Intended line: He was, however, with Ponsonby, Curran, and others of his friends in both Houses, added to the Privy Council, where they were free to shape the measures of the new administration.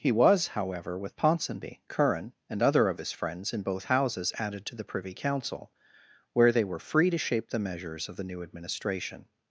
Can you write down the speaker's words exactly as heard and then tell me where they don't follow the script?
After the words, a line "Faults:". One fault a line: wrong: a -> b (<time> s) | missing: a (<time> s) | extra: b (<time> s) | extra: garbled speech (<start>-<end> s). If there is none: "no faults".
He was, however, with Ponsonby, Curran, and other of his friends in both Houses, added to the Privy Council, where they were free to shape the measures of the new administration.
Faults:
wrong: others -> other (2.6 s)